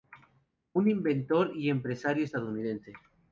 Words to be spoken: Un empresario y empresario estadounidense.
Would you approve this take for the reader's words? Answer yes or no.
no